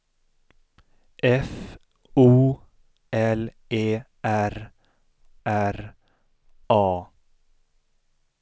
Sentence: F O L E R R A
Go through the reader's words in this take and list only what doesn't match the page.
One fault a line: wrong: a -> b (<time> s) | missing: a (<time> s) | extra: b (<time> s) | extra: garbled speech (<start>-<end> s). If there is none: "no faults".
no faults